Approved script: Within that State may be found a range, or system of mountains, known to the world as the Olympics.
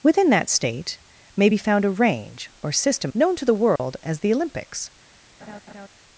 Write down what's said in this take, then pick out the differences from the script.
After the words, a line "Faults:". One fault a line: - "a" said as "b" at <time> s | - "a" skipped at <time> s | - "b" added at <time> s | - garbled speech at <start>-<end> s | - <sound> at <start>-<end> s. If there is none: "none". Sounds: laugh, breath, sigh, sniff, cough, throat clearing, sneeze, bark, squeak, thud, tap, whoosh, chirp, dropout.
Within that State may be found a range, or system known to the world as the Olympics.
Faults:
- "of mountains" skipped at 3.1 s
- dropout at 3.8-3.8 s
- laugh at 5.4-5.9 s